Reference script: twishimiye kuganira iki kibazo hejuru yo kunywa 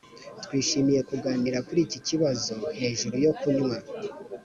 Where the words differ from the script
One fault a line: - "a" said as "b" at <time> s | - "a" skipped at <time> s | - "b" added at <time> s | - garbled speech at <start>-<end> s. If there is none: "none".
- "kuri" added at 1.7 s